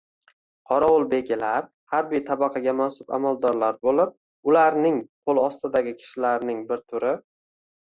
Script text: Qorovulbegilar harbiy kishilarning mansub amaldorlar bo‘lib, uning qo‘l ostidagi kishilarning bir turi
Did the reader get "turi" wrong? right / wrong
right